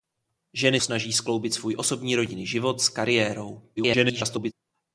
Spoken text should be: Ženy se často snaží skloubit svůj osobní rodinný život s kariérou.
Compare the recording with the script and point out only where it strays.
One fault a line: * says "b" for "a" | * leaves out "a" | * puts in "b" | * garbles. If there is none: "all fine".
* leaves out "se často"
* garbles